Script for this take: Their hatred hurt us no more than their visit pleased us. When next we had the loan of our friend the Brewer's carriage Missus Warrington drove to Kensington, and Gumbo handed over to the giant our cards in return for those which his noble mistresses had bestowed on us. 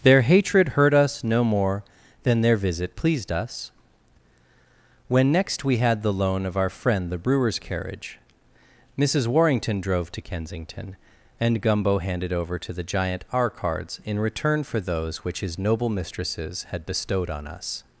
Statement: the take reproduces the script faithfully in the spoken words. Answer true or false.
true